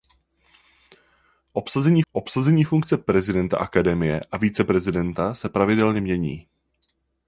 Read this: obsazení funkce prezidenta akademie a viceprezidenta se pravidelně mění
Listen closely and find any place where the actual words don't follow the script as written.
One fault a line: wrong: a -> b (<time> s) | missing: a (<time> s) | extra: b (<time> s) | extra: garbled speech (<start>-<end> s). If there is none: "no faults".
extra: obsazení (2.1 s)